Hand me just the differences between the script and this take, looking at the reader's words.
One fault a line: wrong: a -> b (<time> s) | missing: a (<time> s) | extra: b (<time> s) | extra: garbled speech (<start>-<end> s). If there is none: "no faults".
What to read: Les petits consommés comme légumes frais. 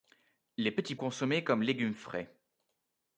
no faults